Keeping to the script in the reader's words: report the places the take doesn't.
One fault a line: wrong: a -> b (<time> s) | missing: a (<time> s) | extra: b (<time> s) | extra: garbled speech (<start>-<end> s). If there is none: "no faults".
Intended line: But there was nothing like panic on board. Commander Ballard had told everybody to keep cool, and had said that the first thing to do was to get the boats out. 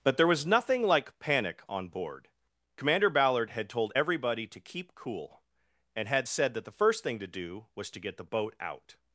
wrong: boats -> boat (8.2 s)